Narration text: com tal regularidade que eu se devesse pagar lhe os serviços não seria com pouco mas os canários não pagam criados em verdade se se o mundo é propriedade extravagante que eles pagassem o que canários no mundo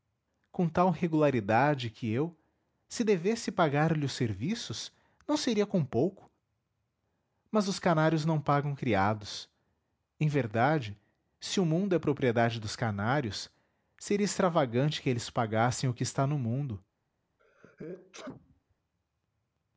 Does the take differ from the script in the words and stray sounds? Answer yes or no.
yes